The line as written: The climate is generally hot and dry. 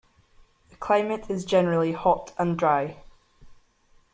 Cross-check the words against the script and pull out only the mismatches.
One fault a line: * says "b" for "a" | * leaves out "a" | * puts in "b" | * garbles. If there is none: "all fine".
all fine